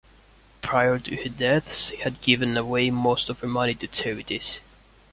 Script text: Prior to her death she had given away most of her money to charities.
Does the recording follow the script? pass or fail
pass